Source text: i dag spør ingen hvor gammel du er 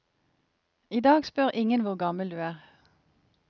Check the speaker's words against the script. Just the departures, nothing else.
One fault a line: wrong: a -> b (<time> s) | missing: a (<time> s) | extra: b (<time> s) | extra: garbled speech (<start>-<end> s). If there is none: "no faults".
no faults